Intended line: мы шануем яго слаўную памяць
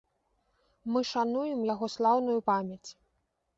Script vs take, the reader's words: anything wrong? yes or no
no